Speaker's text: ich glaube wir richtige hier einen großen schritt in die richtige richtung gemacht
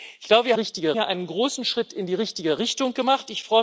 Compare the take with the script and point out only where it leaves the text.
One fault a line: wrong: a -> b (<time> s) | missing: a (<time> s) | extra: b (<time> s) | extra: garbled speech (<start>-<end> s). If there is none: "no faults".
no faults